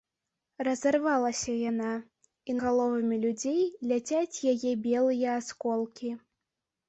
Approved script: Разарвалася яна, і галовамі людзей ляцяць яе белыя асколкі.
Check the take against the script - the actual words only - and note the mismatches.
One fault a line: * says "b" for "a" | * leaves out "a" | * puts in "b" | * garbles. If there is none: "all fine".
all fine